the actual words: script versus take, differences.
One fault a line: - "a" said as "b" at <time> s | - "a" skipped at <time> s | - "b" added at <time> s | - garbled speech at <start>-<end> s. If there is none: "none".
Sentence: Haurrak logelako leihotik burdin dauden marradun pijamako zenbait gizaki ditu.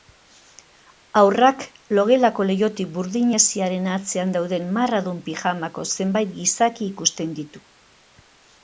- "hesiaren atzean" added at 3.4 s
- "ikusten" added at 6.9 s